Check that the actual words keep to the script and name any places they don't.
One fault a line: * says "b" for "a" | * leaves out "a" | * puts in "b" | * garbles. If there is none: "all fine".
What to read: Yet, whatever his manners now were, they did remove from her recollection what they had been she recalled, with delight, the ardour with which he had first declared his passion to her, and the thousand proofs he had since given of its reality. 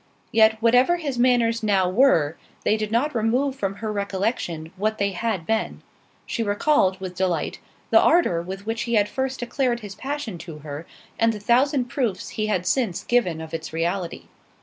* puts in "not"